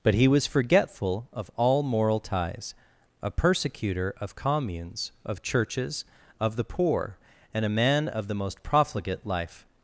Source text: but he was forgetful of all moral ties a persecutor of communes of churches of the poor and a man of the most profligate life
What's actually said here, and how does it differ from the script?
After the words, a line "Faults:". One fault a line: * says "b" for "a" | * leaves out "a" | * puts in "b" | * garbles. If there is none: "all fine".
but he was forgetful of all moral ties a persecutor of communes of churches of the poor and a man of the most profligate life
Faults:
all fine